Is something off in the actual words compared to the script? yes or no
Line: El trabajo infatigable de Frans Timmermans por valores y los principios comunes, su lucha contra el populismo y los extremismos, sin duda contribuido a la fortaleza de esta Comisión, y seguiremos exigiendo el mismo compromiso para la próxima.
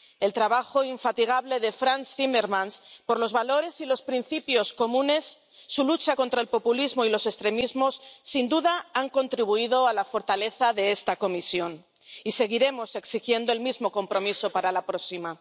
yes